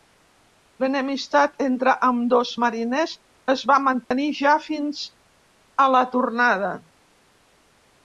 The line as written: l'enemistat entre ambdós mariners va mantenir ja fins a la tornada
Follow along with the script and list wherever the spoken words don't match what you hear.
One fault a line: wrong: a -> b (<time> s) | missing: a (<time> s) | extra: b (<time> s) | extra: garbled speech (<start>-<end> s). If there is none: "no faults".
extra: es (3.5 s)